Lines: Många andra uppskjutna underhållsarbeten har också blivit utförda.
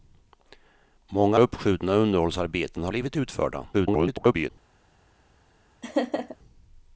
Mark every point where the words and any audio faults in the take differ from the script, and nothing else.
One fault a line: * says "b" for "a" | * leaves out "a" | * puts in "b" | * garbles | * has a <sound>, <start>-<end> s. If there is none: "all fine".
* leaves out "andra"
* leaves out "också"
* garbles
* has a laugh, 5.8-6.4 s